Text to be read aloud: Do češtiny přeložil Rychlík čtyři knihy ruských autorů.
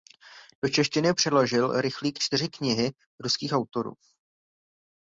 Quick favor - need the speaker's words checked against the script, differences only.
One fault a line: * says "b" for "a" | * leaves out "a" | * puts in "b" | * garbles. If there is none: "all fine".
all fine